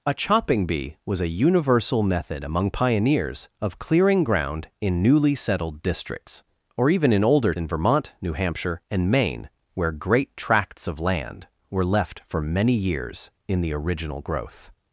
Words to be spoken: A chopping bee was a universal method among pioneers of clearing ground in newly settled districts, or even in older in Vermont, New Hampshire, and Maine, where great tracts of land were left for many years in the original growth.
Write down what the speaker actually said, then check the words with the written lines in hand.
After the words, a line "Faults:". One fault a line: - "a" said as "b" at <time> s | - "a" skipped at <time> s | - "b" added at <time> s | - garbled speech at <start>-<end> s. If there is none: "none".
A chopping bee was a universal method among pioneers of clearing ground in newly settled districts, or even in older in Vermont, New Hampshire, and Maine, where great tracts of land were left for many years in the original growth.
Faults:
none